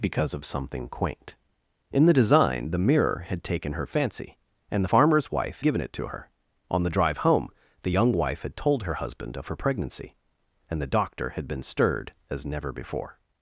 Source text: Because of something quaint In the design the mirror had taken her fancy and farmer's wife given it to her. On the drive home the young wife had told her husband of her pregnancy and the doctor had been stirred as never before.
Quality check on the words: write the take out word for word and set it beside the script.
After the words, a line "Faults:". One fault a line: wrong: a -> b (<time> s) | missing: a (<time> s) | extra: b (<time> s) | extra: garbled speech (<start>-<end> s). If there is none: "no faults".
Because of something quaint In the design the mirror had taken her fancy and farmer's wife given it to her. On the drive home the young wife had told her husband of her pregnancy and the doctor had been stirred as never before.
Faults:
no faults